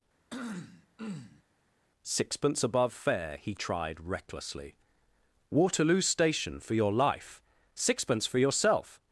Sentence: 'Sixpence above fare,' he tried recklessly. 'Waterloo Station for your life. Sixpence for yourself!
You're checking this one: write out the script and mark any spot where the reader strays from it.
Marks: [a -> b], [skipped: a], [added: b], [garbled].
'Sixpence above fare,' he tried recklessly. 'Waterloo Station for your life. Sixpence for yourself!